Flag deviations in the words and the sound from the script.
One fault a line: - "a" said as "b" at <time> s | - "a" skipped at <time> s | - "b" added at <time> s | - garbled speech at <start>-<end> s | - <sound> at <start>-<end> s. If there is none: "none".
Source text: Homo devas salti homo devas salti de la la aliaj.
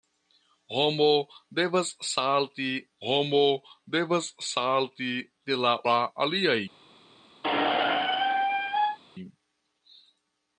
- squeak at 7.4-9.0 s